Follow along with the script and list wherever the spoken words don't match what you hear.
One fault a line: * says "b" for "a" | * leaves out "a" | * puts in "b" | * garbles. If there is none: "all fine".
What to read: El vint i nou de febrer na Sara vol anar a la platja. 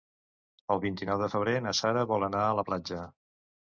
all fine